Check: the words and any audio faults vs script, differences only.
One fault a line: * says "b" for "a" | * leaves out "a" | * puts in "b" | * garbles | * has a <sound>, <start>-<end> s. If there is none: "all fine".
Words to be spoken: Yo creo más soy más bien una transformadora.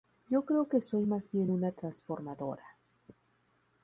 * says "que" for "más"